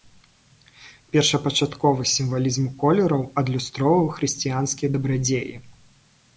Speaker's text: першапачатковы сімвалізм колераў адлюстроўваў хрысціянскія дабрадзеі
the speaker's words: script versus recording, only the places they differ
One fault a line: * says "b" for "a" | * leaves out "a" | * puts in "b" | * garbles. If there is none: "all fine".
all fine